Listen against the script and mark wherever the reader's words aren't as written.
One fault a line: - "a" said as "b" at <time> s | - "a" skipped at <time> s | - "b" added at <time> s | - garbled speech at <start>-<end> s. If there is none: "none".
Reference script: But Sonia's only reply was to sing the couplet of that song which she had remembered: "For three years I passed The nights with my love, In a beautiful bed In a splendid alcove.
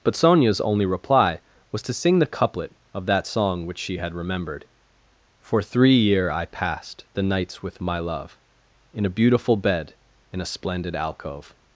- "years" said as "year" at 6.0 s